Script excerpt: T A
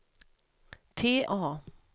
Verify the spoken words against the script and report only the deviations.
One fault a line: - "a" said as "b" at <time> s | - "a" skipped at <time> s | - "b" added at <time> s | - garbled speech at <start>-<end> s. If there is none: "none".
none